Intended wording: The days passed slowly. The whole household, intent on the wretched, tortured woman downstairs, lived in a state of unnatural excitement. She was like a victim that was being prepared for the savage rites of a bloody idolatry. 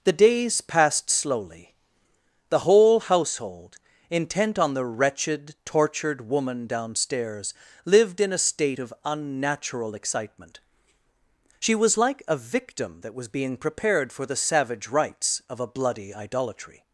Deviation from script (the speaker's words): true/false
false